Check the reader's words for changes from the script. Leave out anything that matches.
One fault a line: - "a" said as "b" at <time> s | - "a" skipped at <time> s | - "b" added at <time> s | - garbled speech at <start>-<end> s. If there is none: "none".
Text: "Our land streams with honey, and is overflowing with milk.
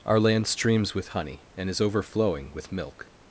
none